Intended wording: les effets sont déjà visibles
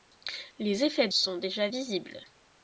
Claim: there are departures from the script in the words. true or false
false